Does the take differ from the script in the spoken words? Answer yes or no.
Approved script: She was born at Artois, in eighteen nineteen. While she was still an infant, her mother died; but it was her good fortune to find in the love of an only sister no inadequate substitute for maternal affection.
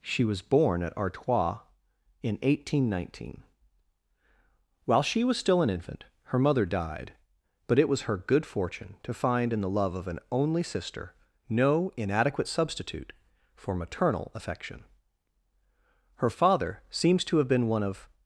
yes